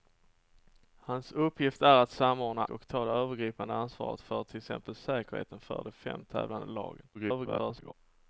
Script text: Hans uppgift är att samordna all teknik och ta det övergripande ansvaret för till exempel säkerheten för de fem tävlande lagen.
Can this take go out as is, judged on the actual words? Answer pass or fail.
fail